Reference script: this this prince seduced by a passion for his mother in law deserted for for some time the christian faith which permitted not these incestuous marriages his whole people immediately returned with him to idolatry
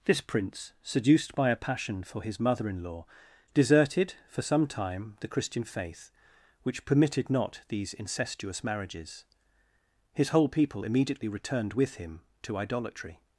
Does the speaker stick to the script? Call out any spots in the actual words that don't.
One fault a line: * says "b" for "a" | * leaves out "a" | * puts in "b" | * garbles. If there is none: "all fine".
* leaves out "this"
* leaves out "for"